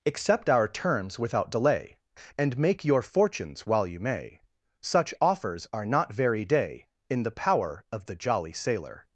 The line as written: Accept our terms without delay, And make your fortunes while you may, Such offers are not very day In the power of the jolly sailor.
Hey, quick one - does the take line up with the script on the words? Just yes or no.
yes